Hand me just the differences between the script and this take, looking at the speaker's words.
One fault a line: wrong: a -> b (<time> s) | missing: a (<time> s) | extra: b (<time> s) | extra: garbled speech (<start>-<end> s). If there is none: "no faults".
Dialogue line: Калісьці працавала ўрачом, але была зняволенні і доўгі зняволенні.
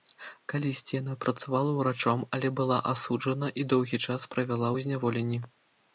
extra: яна (1.0 s)
wrong: зняволенні -> асуджана (3.0 s)
extra: час правяла ў (4.1 s)